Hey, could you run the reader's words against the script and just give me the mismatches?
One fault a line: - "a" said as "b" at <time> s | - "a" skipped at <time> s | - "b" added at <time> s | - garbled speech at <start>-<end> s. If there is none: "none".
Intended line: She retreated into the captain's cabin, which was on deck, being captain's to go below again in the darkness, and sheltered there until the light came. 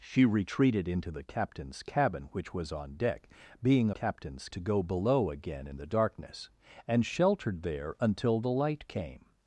none